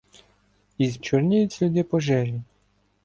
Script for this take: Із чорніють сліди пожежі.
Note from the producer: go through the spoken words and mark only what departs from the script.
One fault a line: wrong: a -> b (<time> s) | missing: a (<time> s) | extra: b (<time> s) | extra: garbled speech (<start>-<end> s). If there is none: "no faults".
no faults